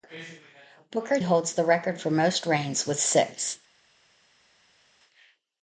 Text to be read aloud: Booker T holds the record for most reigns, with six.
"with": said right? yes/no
yes